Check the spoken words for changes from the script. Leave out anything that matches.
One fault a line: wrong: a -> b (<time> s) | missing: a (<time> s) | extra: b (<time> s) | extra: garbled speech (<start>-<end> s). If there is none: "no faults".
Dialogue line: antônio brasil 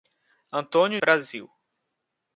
no faults